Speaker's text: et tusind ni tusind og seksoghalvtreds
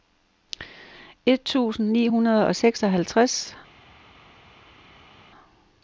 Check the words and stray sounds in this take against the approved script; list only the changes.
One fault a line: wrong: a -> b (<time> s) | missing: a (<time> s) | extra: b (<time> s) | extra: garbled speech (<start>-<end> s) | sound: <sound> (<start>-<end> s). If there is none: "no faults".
wrong: tusind -> hundrede (2.0 s)